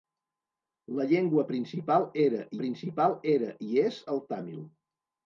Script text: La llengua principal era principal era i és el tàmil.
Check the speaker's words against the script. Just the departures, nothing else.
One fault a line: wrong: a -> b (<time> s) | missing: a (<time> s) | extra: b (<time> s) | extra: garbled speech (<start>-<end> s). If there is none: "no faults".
no faults